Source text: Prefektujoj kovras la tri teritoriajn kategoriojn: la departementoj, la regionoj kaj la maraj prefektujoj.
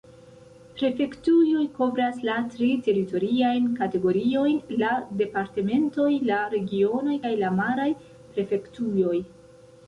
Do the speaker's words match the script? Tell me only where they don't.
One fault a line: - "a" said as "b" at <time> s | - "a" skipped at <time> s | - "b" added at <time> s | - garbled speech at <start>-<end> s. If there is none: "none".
none